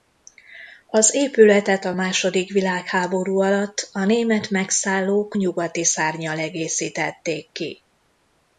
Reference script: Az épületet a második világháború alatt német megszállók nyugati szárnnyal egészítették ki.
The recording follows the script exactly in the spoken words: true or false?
false